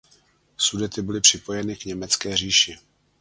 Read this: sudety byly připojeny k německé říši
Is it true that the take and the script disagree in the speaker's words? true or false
false